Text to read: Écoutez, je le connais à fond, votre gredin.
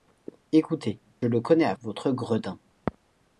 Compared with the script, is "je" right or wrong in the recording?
wrong